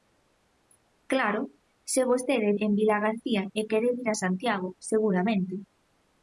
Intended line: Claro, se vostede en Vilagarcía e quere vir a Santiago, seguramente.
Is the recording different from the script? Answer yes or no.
no